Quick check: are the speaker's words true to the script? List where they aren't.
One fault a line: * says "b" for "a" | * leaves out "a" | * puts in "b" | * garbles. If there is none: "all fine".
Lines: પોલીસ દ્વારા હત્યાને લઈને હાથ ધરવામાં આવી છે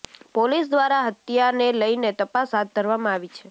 * puts in "તપાસ"